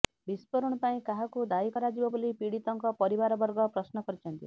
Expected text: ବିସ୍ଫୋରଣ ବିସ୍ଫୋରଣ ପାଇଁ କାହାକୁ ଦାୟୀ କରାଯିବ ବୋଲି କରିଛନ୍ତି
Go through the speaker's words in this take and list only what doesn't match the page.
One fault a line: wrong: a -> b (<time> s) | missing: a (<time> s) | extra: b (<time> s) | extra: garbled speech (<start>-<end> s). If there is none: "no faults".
missing: ବିସ୍ଫୋରଣ (0.8 s)
extra: ପୀଡ଼ିତଙ୍କ ପରିବାରବର୍ଗ ପ୍ରଶ୍ନ (2.4 s)